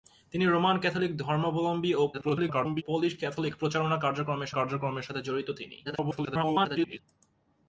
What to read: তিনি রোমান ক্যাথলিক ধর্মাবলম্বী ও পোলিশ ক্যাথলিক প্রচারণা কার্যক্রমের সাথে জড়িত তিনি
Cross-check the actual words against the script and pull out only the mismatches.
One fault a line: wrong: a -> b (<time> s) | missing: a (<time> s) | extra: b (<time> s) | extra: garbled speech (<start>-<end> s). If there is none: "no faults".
extra: garbled speech (2.1-2.8 s)
extra: কার্যক্রমের (4.5 s)
extra: garbled speech (5.8-7.0 s)